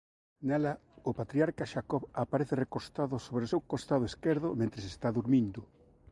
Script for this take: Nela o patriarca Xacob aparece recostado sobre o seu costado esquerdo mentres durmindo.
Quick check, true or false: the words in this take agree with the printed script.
false